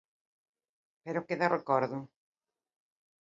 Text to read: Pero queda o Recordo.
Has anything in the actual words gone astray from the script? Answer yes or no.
no